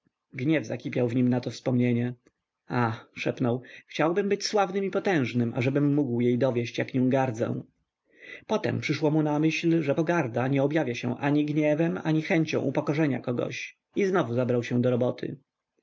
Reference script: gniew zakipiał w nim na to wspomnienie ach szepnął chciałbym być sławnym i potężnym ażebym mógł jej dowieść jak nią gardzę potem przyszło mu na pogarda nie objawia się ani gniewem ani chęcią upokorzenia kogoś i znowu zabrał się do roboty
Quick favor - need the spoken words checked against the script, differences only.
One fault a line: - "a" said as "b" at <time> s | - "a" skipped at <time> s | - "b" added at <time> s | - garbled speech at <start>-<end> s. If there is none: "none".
- "myśl że" added at 9.4 s